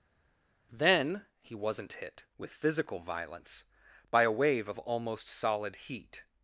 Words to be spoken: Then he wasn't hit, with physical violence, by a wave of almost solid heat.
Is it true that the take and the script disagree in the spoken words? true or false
false